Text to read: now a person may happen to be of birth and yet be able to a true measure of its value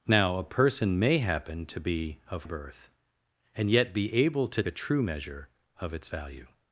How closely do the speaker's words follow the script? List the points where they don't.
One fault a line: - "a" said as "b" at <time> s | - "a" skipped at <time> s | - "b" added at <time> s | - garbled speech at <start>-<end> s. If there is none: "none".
none